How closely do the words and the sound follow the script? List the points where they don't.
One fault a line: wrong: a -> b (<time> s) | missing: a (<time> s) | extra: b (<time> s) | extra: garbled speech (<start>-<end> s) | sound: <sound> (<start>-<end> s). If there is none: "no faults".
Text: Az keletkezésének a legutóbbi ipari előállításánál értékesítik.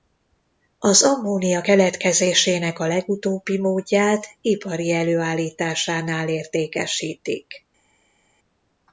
extra: ammónia (1.0 s)
extra: módját (3.6 s)